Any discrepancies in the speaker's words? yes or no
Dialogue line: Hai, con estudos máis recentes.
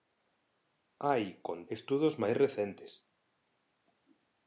no